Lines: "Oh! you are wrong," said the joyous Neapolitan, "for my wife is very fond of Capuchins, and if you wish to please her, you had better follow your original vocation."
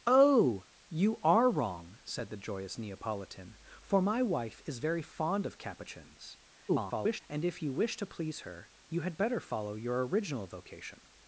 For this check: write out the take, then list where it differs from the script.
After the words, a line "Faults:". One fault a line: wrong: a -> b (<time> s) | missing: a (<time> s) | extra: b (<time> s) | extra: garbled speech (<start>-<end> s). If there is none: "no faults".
"Oh! you are wrong," said the joyous Neapolitan, "for my wife is very fond of Capuchins, [garbled] and if you wish to please her, you had better follow your original vocation."
Faults:
extra: garbled speech (6.7-7.2 s)